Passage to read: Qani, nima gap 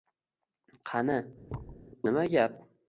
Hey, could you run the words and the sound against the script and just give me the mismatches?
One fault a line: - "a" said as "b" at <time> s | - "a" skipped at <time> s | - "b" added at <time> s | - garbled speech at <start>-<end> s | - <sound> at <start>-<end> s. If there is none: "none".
- thud at 1.5-1.9 s